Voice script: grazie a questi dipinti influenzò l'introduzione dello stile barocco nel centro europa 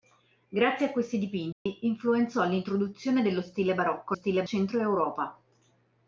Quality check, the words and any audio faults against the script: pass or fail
fail